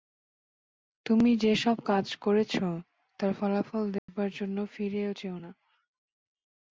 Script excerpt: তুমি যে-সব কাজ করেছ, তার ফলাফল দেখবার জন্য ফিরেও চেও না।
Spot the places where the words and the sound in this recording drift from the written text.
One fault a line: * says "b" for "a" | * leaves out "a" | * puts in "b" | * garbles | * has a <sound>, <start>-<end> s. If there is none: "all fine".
* has a dropout, 4.0-4.1 s